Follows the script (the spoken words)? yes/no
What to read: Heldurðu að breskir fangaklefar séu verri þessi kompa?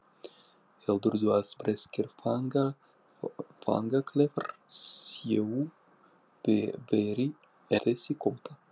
yes